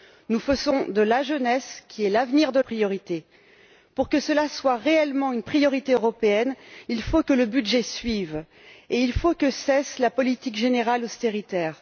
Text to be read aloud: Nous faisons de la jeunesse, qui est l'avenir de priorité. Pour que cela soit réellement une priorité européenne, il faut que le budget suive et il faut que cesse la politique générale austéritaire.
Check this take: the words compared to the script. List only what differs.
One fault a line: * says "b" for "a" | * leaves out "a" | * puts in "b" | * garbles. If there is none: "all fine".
all fine